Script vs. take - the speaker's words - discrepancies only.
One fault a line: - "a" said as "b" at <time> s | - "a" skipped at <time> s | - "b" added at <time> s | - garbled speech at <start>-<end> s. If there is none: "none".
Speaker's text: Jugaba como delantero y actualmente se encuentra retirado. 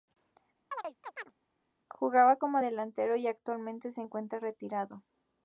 none